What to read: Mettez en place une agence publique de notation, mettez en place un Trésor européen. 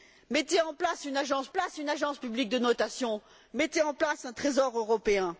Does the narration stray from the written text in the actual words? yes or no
yes